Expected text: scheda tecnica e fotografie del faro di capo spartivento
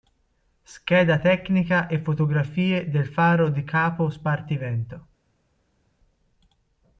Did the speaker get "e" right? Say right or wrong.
right